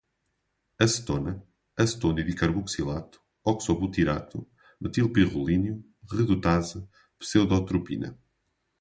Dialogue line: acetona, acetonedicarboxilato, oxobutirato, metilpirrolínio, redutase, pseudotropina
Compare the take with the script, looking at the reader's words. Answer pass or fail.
pass